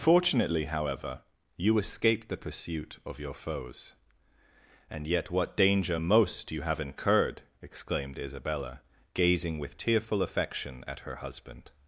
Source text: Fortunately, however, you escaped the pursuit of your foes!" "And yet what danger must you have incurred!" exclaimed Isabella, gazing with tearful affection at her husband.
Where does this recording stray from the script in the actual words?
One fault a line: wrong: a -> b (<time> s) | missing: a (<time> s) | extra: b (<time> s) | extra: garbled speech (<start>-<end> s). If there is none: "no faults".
wrong: must -> most (6.0 s)